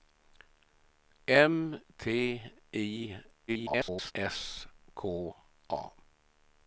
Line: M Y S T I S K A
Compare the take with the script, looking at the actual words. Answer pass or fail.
fail